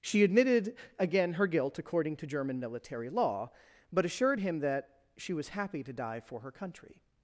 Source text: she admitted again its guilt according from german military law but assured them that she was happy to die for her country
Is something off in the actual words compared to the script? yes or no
yes